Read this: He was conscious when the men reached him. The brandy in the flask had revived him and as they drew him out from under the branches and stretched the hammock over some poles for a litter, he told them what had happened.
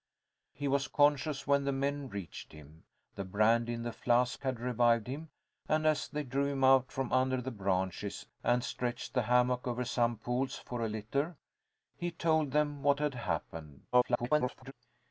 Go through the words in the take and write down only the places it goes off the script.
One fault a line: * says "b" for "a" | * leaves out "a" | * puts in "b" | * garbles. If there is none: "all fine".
* garbles